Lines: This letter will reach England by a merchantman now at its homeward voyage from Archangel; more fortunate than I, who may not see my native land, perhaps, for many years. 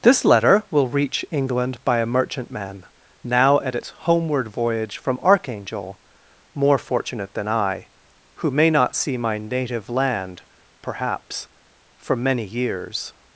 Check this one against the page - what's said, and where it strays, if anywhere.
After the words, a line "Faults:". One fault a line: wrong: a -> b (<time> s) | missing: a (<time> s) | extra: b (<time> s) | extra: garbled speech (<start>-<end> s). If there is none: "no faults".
This letter will reach England by a merchantman now at its homeward voyage from Archangel; more fortunate than I, who may not see my native land, perhaps, for many years.
Faults:
no faults